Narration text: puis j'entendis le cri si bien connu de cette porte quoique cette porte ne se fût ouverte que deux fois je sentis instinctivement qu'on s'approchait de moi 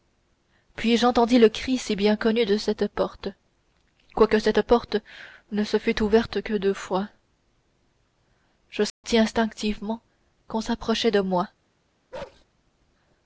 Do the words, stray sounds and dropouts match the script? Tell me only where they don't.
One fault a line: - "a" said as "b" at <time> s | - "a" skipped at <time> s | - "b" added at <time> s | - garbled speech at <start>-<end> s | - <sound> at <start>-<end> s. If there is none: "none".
- dropout at 8.9-9.0 s
- bark at 12.1-12.4 s